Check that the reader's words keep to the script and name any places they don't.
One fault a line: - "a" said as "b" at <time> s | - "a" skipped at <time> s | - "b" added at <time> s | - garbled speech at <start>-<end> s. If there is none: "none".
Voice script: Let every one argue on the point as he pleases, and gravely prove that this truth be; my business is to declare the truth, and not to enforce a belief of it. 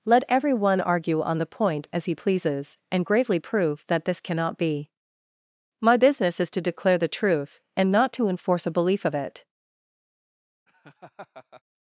- "truth" said as "cannot" at 4.2 s